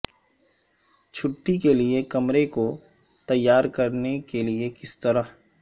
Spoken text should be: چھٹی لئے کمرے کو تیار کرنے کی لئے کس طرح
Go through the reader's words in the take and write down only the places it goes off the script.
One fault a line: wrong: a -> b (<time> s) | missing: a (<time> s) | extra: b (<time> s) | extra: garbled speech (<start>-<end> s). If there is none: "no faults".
extra: کے (1.6 s)
wrong: کی -> کے (4.2 s)